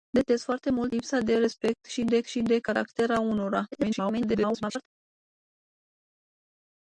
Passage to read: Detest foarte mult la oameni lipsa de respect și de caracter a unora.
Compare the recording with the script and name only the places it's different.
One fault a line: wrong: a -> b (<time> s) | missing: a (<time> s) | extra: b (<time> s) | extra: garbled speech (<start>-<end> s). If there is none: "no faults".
missing: la oameni (0.9 s)
extra: și de (2.2 s)
extra: garbled speech (3.7-4.9 s)